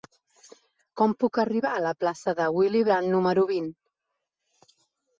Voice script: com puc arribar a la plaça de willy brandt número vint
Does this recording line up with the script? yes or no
yes